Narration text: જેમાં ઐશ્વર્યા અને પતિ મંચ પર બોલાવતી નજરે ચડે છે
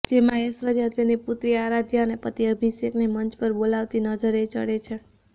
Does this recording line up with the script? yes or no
no